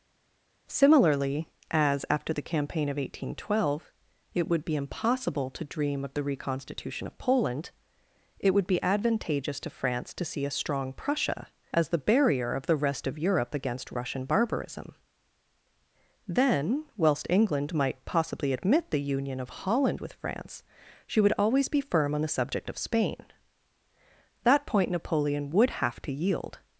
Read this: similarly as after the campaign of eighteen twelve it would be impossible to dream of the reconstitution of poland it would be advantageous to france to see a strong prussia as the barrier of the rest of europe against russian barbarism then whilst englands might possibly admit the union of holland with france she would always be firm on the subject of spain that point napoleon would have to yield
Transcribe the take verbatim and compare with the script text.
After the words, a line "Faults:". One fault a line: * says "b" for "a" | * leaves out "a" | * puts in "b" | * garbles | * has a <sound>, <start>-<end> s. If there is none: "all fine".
similarly as after the campaign of eighteen twelve it would be impossible to dream of the reconstitution of poland it would be advantageous to france to see a strong prussia as the barrier of the rest of europe against russian barbarism then whilst england might possibly admit the union of holland with france she would always be firm on the subject of spain that point napoleon would have to yield
Faults:
* says "england" for "englands"